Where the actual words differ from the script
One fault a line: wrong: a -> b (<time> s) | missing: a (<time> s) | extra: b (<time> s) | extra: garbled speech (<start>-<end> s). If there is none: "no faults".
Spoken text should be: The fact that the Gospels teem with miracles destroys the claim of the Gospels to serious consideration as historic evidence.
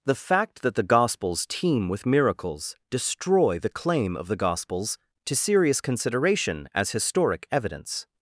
wrong: destroys -> destroy (2.9 s)